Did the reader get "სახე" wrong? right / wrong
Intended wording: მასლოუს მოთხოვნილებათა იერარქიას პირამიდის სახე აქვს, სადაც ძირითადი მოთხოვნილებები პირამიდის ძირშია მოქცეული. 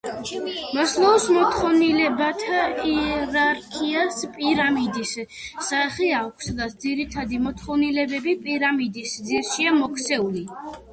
right